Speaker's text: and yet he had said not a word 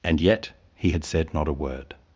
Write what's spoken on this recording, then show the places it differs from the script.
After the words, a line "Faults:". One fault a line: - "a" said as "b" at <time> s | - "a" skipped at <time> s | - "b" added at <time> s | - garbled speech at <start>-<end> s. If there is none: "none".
and yet he had said not a word
Faults:
none